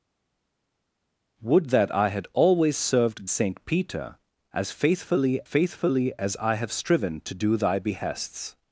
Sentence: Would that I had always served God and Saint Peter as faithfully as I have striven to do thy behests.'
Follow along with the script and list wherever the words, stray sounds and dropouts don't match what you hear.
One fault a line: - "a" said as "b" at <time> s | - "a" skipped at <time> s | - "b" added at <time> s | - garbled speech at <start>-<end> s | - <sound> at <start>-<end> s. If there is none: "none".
- "God and" skipped at 3.3 s
- "faithfully" added at 5.4 s